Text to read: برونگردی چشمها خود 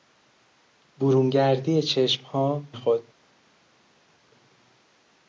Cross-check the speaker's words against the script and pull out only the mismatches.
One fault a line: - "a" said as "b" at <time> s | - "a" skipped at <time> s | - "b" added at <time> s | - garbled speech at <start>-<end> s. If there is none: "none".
none